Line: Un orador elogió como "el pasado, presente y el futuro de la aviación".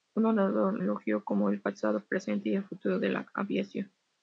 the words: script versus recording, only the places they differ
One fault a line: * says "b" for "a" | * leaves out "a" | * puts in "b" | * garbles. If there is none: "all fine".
all fine